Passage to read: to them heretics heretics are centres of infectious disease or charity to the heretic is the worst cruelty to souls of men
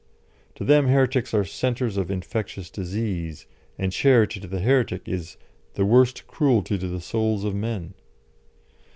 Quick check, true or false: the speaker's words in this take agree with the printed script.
false